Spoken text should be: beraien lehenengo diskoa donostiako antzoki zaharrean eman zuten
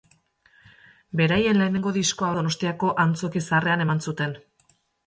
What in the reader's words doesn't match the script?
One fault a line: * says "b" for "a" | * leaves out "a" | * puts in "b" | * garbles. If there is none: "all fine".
all fine